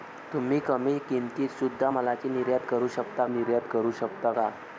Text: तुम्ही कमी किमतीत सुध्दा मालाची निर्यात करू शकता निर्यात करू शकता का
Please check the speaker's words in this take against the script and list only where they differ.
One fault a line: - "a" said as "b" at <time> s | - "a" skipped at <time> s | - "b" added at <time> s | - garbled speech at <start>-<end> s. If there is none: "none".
none